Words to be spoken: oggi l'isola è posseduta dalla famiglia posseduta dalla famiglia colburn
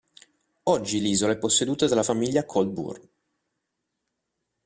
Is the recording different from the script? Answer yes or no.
yes